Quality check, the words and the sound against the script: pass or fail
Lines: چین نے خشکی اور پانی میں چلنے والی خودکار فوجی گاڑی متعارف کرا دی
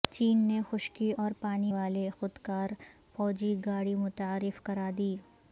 fail